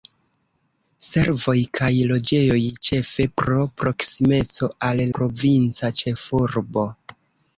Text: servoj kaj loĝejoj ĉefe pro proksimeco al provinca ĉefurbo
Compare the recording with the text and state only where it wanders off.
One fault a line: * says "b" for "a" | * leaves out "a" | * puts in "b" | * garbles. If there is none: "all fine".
all fine